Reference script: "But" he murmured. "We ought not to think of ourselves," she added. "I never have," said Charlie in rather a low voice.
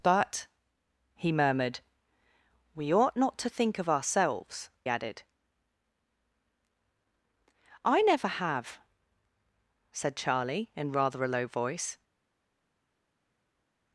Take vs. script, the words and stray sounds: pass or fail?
fail